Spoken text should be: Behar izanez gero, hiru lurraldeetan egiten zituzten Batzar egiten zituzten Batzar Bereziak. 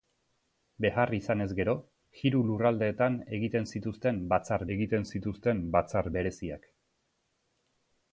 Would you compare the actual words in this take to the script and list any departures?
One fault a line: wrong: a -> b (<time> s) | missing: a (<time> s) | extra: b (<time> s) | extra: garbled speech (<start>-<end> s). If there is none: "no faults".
no faults